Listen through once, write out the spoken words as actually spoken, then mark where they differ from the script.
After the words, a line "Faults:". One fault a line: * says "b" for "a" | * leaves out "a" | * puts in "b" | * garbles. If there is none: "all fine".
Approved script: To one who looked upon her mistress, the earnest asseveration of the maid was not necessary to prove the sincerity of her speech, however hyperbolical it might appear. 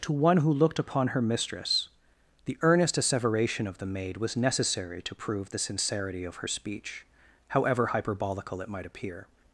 To one who looked upon her mistress, the earnest asseveration of the maid was necessary to prove the sincerity of her speech, however hyperbolical it might appear.
Faults:
* leaves out "not"